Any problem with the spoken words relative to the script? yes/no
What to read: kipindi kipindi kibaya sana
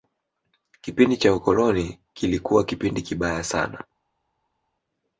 yes